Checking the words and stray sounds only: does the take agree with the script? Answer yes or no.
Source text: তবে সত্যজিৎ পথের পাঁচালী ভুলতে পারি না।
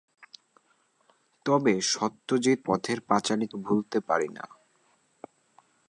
yes